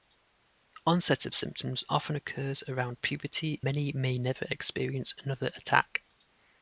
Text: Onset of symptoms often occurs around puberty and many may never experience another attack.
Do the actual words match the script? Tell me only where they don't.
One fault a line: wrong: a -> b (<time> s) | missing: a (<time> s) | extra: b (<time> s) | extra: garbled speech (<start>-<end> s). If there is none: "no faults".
missing: and (3.6 s)